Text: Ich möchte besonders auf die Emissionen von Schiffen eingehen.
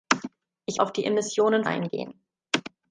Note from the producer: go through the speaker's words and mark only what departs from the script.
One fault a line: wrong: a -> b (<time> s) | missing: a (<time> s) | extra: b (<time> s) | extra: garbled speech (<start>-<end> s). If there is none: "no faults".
missing: möchte besonders (0.8 s)
missing: von Schiffen (1.6 s)